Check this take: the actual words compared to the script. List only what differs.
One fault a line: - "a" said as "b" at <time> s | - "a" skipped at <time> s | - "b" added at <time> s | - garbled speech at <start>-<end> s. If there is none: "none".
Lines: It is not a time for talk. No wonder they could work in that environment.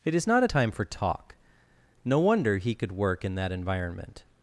- "they" said as "he" at 2.6 s